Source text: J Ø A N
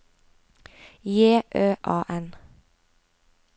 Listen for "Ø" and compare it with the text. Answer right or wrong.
right